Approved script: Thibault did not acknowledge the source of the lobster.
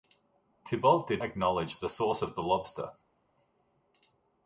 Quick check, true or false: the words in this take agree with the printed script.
false